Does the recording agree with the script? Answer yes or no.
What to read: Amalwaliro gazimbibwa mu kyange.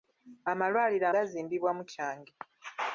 yes